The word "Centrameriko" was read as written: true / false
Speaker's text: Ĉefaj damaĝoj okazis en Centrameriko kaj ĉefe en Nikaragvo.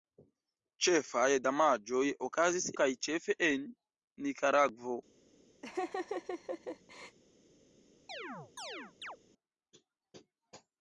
false